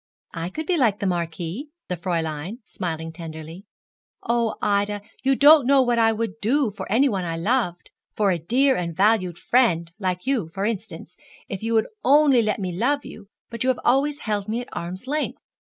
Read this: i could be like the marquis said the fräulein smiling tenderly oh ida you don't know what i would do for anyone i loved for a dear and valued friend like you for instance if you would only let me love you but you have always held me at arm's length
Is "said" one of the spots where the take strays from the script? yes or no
yes